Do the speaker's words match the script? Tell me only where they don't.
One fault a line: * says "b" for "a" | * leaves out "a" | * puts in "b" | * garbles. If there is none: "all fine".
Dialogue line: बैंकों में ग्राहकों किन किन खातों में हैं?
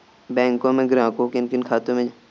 all fine